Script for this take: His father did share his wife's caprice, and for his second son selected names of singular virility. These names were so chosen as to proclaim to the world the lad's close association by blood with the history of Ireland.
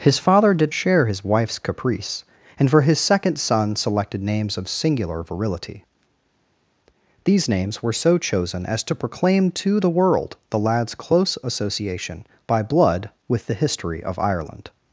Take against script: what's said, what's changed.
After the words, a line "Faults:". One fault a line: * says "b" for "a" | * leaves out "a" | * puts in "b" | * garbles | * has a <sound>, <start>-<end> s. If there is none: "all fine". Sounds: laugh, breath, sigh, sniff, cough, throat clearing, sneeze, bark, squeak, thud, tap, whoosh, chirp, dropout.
His father did share his wife's caprice, and for his second son selected names of singular virility. These names were so chosen as to proclaim to the world the lad's close association by blood with the history of Ireland.
Faults:
all fine